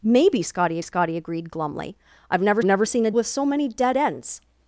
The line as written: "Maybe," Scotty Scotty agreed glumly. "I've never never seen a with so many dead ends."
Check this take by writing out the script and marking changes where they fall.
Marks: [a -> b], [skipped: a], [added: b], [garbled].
"Maybe," Scotty Scotty agreed glumly. "I've never never seen a with so many dead ends."